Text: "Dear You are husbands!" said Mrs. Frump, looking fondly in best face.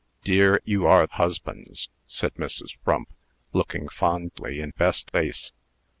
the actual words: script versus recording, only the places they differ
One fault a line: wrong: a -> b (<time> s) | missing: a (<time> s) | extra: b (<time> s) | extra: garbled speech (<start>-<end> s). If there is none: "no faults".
no faults